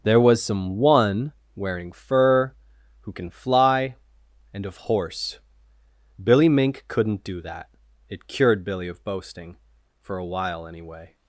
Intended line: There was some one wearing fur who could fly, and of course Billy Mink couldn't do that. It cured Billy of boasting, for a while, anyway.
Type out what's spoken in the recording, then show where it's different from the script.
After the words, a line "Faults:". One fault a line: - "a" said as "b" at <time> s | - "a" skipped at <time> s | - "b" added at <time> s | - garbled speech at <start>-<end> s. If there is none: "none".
There was some one wearing fur who can fly, and of horse Billy Mink couldn't do that. It cured Billy of boasting, for a while, anyway.
Faults:
- "could" said as "can" at 3.1 s
- "course" said as "horse" at 4.8 s